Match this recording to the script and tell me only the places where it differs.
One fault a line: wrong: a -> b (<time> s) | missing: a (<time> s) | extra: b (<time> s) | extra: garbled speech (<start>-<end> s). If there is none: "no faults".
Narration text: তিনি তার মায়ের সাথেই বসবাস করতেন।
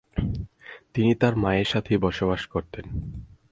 no faults